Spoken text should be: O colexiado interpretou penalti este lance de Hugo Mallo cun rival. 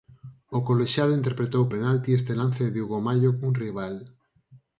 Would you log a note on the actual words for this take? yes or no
no